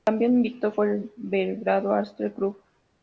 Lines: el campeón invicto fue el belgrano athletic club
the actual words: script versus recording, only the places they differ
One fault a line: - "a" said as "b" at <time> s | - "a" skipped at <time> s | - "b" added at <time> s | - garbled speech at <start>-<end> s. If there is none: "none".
none